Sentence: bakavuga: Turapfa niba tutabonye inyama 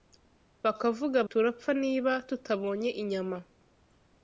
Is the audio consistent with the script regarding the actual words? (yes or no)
yes